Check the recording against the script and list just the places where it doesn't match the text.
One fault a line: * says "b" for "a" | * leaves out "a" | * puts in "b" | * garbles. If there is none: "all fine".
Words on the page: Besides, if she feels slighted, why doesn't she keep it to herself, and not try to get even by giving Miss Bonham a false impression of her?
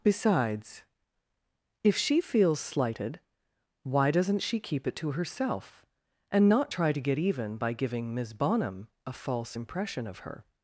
all fine